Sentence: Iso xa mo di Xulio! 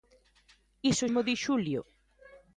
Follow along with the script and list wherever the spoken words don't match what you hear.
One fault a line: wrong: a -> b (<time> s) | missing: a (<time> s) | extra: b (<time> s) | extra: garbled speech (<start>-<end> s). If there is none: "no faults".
missing: xa (1.1 s)